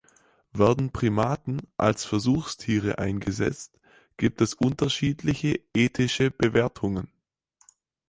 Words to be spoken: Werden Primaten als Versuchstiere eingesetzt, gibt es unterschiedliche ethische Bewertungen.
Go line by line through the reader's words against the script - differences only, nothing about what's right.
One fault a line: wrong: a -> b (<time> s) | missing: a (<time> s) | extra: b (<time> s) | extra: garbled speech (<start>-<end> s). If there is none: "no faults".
no faults